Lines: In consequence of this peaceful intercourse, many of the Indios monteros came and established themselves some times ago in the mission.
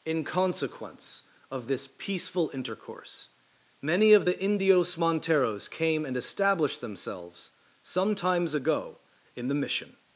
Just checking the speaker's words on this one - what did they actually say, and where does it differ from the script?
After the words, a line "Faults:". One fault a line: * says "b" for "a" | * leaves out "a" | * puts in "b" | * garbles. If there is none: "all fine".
In consequence of this peaceful intercourse, many of the Indios monteros came and established themselves some times ago in the mission.
Faults:
all fine